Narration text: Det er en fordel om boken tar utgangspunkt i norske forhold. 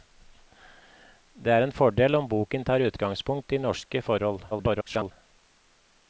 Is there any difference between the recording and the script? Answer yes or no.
yes